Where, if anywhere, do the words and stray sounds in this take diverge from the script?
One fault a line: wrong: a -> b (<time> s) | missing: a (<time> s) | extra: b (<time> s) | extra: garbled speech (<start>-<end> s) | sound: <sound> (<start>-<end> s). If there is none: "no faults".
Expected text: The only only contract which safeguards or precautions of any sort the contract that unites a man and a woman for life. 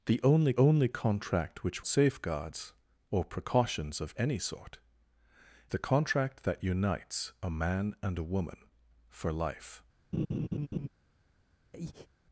sound: laugh (10.1-10.9 s)
sound: breath (11.7-12.1 s)